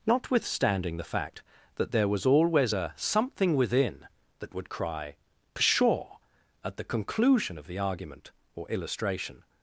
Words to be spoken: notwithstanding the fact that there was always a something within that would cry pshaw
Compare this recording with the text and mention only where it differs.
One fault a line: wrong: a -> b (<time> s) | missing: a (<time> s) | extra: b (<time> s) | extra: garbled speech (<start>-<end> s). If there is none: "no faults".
extra: at the conclusion of the argument or illustration (6.6 s)